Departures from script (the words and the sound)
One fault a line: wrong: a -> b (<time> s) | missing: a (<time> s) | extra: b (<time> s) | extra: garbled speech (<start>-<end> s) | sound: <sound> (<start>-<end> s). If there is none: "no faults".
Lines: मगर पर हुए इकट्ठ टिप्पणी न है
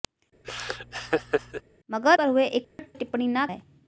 sound: laugh (0.4-1.6 s)
sound: dropout (2.6-2.8 s)